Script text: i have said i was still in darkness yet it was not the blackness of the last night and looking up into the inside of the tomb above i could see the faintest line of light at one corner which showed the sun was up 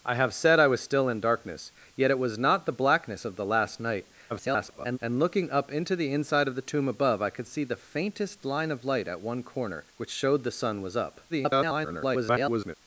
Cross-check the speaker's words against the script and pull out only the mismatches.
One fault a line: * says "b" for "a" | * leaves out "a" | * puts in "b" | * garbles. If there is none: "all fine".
* garbles
* garbles